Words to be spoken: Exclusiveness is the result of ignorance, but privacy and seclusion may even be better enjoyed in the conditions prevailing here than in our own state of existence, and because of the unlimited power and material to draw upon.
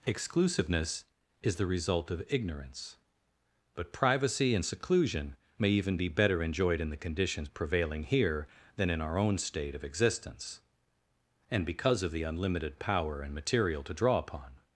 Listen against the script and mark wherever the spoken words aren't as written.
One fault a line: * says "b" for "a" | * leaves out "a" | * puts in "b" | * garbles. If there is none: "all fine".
all fine